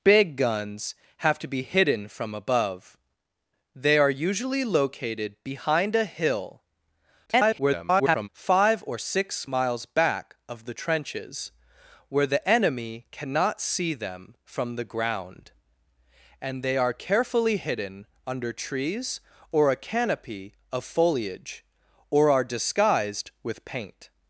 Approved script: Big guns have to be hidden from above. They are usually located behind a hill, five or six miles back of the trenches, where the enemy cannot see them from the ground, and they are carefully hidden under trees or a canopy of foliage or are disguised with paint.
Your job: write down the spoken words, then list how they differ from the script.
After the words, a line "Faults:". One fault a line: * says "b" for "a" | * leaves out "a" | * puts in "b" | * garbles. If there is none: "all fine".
Big guns have to be hidden from above. They are usually located behind a hill, [garbled] five or six miles back of the trenches, where the enemy cannot see them from the ground, and they are carefully hidden under trees or a canopy of foliage or are disguised with paint.
Faults:
* garbles